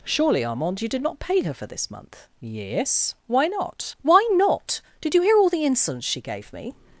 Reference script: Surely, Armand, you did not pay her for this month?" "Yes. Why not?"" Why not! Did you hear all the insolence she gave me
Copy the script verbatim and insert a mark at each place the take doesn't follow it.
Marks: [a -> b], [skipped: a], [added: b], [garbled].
Surely, Armand, you did not pay her for this month?" "Yes. Why not?"" Why not! Did you hear all the insolence she gave me